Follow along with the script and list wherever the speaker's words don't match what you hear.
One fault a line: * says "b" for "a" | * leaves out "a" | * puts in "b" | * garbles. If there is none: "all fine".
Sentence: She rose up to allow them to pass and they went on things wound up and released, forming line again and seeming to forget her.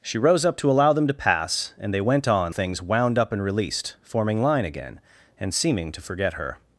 all fine